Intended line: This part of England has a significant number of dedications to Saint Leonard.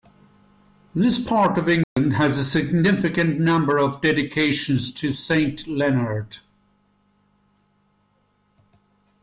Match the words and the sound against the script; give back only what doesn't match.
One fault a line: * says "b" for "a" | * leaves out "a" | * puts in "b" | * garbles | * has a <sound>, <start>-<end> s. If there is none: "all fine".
* has a dropout, 1.8-2.0 s